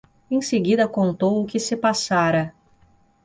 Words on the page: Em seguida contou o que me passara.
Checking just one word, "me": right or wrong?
wrong